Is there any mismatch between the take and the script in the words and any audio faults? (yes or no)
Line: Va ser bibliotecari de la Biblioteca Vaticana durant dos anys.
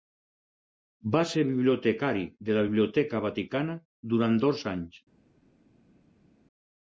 no